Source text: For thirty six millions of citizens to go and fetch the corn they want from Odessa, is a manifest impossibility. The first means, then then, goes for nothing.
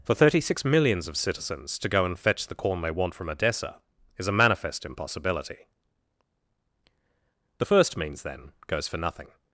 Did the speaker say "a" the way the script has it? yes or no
yes